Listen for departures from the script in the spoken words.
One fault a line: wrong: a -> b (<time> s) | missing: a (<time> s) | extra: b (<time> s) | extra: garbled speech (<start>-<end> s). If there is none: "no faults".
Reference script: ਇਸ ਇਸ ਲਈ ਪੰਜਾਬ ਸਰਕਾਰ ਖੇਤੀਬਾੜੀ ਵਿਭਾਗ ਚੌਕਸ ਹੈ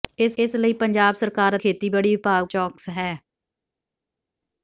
no faults